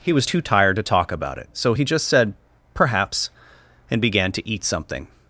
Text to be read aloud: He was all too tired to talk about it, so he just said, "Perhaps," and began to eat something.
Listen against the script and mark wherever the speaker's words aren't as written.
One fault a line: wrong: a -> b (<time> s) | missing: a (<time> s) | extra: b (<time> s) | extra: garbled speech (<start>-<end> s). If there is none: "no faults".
missing: all (0.2 s)